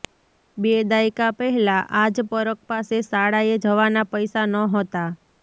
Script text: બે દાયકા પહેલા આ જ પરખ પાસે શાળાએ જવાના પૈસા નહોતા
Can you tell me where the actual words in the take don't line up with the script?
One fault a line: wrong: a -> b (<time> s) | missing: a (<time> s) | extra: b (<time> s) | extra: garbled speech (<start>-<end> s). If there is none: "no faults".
no faults